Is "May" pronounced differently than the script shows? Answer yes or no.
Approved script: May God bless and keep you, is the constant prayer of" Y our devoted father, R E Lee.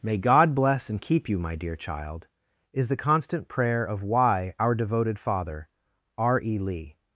no